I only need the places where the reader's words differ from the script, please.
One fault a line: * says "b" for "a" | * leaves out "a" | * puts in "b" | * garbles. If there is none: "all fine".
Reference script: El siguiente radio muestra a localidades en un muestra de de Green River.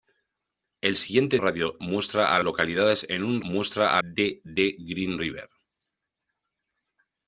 all fine